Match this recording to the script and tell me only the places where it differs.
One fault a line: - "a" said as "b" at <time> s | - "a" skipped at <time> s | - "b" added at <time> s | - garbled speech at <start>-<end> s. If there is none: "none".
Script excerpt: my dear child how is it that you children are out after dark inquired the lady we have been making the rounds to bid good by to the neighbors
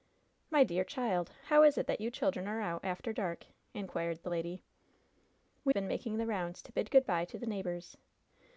- "have" skipped at 5.7 s